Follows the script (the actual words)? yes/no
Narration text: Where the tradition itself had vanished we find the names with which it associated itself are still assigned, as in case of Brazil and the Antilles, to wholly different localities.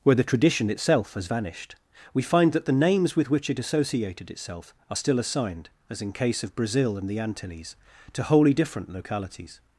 no